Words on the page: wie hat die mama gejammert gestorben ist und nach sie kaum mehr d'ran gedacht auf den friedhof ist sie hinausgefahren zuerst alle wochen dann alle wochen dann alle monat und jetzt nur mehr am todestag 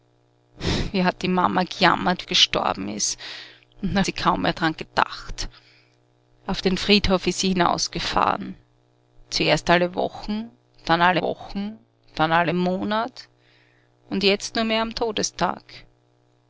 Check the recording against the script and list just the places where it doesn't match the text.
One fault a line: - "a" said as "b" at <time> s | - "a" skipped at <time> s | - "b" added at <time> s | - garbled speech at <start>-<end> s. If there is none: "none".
none